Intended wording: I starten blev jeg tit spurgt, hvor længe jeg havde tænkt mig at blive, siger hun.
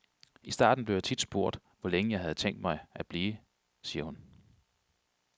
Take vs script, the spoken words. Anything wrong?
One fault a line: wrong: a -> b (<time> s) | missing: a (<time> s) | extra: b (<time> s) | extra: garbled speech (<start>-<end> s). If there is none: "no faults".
no faults